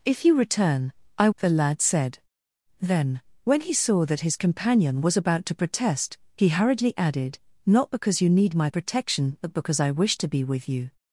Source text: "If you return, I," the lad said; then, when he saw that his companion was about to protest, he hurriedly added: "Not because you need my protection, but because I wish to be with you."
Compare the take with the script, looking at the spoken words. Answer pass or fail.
pass